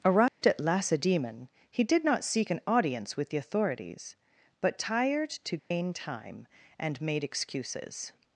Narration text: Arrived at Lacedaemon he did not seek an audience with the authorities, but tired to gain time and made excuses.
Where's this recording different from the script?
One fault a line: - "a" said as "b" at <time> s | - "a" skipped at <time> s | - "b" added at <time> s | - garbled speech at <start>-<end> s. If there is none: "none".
none